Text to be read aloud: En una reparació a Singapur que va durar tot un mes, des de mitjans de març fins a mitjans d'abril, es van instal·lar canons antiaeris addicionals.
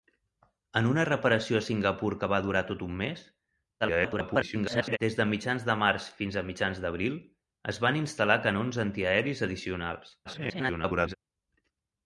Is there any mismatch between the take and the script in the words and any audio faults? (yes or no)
yes